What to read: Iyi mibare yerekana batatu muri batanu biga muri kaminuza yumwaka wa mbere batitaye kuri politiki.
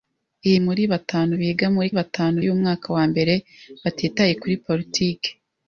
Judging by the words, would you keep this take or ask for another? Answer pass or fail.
fail